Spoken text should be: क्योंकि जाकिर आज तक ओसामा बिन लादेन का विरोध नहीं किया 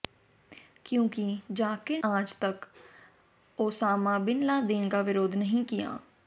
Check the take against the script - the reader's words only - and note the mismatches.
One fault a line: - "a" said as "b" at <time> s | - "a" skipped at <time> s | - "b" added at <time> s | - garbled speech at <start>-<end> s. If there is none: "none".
none